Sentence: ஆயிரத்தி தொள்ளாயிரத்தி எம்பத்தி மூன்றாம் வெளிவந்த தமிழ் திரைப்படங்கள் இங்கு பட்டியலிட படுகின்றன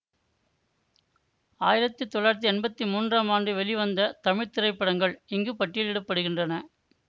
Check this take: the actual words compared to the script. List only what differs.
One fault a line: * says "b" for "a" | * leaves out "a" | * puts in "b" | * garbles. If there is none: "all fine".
* puts in "ஆண்டு"